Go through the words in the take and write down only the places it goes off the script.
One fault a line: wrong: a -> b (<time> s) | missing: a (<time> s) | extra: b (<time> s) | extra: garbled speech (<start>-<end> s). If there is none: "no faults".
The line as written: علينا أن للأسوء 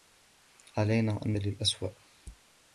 no faults